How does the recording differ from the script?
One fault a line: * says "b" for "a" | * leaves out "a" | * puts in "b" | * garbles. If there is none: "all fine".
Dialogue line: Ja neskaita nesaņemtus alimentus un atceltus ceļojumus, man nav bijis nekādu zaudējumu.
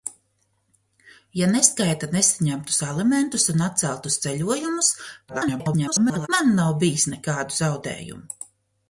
* garbles